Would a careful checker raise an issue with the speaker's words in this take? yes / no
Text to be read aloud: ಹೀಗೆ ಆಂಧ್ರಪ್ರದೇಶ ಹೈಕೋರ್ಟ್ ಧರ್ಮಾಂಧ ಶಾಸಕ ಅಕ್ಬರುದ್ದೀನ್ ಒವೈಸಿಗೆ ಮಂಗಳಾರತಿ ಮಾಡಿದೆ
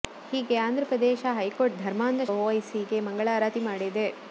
yes